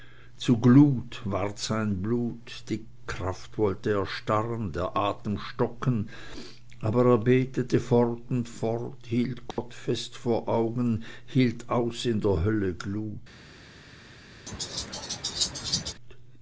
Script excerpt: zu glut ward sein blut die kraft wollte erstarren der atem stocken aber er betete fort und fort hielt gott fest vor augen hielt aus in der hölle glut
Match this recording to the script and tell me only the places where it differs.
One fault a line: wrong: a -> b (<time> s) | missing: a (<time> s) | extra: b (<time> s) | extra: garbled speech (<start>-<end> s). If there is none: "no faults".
no faults